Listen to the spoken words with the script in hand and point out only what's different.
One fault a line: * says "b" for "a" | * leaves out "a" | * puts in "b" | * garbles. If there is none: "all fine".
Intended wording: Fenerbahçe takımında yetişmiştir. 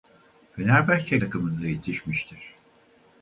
all fine